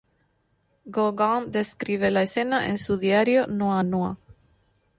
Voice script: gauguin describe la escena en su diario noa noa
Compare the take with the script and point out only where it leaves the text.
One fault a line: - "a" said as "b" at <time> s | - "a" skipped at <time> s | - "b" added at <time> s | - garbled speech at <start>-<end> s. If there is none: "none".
none